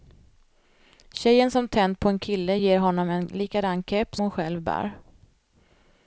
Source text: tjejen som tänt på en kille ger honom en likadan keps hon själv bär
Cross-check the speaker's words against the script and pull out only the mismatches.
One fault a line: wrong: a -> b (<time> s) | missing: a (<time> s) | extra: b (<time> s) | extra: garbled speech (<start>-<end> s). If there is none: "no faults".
no faults